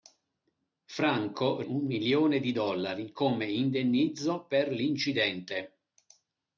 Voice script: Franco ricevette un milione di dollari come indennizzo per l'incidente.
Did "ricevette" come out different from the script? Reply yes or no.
yes